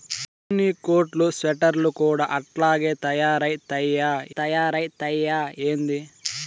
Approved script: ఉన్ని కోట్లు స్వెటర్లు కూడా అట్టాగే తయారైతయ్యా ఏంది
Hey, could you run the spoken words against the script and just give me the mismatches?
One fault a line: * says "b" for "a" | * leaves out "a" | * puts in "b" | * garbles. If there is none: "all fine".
* puts in "తయారైతయ్యా"